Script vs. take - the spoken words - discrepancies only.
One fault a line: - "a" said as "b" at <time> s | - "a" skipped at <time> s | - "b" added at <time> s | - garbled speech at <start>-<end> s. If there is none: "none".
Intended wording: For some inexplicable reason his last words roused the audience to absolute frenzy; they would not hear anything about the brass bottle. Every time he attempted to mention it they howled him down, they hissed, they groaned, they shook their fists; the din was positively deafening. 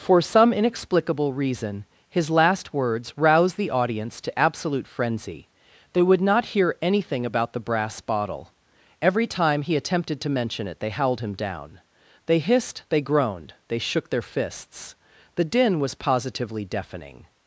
none